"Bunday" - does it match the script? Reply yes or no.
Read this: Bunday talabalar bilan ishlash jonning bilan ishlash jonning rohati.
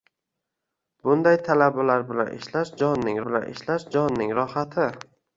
yes